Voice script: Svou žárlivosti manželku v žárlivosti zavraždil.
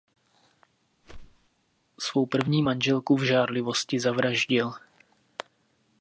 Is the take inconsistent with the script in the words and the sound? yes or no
yes